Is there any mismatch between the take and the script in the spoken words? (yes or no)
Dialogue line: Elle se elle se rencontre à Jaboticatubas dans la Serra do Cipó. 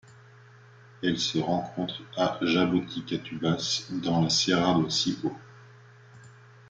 yes